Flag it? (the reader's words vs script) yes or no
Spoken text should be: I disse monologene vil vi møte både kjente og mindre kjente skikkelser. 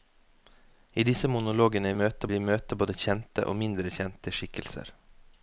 yes